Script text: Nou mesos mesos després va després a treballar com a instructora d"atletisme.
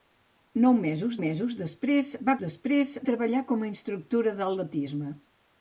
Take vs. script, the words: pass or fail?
pass